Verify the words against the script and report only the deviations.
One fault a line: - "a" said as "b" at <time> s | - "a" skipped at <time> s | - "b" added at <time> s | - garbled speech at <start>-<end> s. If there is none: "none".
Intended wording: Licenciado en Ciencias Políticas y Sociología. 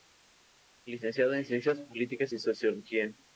none